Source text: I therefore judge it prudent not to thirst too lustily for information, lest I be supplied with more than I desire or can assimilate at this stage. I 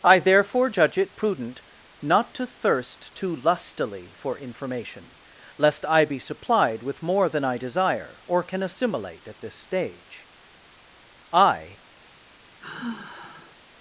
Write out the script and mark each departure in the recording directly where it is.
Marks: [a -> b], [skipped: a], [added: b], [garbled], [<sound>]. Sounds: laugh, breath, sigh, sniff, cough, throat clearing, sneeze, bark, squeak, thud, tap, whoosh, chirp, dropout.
I therefore judge it prudent not to thirst too lustily for information, lest I be supplied with more than I desire or can assimilate at this stage. I [sigh]